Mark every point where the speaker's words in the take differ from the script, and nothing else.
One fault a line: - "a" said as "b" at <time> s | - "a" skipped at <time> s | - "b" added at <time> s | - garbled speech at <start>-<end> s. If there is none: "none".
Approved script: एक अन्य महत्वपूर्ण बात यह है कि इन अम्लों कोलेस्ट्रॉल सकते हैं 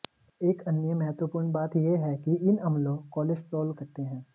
none